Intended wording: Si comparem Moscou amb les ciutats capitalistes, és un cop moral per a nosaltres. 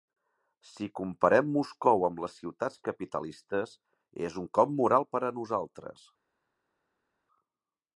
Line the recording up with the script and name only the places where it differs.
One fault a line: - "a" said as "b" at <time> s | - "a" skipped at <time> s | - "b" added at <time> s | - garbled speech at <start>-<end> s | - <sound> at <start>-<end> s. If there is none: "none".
none